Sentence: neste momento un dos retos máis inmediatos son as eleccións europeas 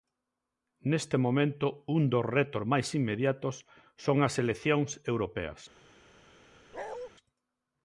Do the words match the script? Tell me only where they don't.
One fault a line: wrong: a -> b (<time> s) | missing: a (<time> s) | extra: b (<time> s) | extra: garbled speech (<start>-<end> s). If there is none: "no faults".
no faults